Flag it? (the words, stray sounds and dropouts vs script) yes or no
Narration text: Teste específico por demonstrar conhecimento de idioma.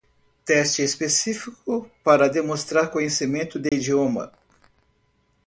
yes